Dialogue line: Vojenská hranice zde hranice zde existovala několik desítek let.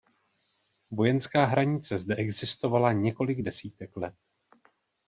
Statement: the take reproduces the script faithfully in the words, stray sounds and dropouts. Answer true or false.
false